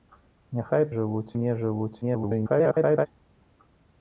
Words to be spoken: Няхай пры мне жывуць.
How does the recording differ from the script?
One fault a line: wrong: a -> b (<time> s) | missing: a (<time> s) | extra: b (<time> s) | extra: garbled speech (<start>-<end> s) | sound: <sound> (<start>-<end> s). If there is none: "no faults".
wrong: пры -> жывуць (1.0 s)
extra: garbled speech (2.0-3.1 s)